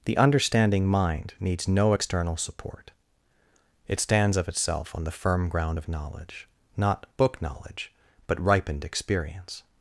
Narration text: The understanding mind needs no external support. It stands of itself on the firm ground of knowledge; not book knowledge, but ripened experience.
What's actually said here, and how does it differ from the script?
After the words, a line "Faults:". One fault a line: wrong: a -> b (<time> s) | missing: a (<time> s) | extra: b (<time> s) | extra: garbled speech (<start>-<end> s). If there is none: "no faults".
The understanding mind needs no external support. It stands of itself on the firm ground of knowledge; not book knowledge, but ripened experience.
Faults:
no faults